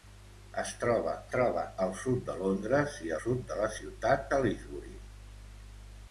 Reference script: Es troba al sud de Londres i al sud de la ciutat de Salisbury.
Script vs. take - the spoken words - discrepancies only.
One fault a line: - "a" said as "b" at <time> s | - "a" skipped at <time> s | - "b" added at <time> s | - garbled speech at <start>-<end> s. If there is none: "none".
- "troba" added at 1.3 s
- "al" skipped at 3.1 s
- "de" skipped at 4.3 s